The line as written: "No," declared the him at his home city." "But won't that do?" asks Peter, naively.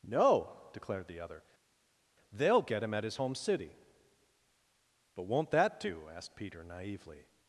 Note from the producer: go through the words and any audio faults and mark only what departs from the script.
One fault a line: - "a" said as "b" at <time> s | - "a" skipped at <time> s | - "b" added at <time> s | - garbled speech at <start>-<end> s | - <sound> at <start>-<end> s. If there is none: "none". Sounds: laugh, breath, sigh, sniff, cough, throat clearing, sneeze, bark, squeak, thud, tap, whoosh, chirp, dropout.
- "other They'll get" added at 1.2 s
- "asks" said as "asked" at 6.1 s